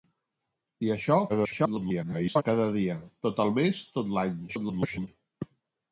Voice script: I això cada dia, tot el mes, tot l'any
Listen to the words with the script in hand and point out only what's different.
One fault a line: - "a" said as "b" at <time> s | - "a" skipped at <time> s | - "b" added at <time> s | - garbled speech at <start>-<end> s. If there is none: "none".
- garbled speech at 1.3-2.4 s
- garbled speech at 4.5-5.1 s